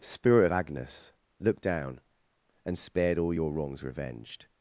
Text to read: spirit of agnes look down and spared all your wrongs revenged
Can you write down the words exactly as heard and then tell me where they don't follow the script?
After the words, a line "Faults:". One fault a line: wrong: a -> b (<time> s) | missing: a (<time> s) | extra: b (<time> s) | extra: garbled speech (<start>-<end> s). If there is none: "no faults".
spirit of agnes look down and spared all your wrongs revenged
Faults:
no faults